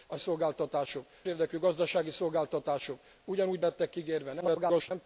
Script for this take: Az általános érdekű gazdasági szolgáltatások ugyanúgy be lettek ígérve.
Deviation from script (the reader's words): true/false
true